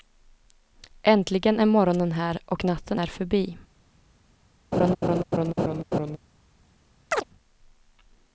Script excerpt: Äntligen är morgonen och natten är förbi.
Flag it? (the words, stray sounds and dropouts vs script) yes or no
yes